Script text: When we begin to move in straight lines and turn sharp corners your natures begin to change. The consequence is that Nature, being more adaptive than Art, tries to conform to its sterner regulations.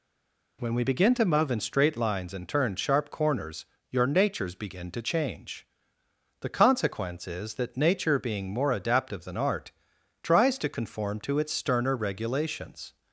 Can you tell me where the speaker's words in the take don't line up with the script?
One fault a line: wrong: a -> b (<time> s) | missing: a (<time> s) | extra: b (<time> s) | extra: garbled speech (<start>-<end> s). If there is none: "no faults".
no faults